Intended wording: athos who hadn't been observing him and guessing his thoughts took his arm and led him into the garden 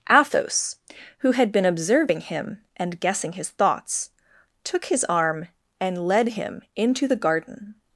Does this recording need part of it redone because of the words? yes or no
yes